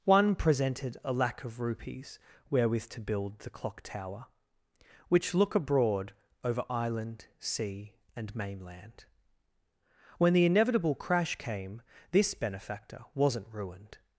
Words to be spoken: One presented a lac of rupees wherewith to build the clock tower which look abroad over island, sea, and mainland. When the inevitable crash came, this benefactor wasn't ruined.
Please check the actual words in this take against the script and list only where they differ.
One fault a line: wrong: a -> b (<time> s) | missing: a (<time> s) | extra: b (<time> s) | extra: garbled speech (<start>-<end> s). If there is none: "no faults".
no faults